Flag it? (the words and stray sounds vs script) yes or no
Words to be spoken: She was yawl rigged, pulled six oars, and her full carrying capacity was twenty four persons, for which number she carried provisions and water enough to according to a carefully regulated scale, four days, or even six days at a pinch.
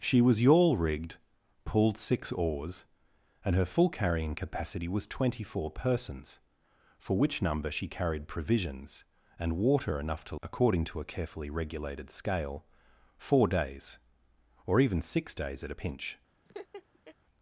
yes